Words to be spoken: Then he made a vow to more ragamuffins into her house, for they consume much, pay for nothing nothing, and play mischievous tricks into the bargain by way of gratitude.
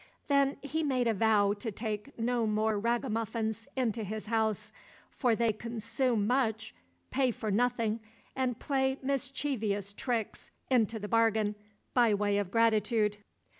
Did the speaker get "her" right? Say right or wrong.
wrong